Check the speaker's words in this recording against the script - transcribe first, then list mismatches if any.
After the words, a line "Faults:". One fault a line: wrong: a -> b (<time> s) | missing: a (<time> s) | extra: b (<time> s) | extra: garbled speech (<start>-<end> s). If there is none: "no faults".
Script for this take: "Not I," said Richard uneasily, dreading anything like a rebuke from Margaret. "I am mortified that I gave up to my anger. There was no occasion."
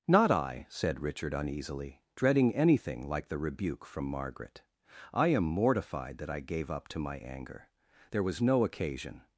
"Not I," said Richard uneasily, dreading anything like the rebuke from Margaret. "I am mortified that I gave up to my anger. There was no occasion."
Faults:
wrong: a -> the (3.3 s)